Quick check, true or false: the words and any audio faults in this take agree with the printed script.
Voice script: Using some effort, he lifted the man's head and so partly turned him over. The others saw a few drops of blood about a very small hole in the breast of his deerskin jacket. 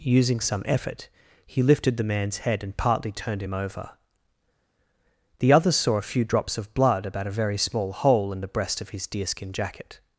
false